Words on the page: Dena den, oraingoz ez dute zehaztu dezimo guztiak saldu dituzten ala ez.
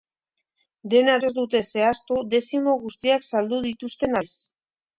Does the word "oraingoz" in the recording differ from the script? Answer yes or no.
yes